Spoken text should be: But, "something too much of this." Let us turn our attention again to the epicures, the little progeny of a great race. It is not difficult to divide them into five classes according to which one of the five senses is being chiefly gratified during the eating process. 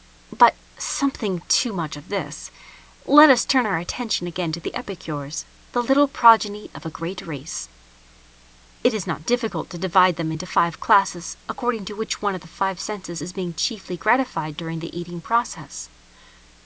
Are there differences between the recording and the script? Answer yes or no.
no